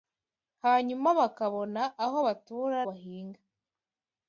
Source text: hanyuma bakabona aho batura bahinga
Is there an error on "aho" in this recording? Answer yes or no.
no